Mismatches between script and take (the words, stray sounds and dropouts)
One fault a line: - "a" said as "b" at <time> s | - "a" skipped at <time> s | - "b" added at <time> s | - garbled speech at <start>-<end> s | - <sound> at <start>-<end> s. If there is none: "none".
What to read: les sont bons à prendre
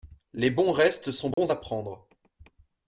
- "bons restes" added at 0.5 s
- dropout at 1.3-1.4 s